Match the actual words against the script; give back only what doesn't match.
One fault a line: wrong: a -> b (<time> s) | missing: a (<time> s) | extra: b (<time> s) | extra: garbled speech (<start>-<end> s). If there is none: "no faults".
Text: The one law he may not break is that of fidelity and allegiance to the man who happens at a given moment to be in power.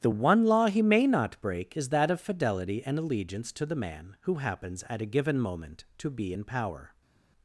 no faults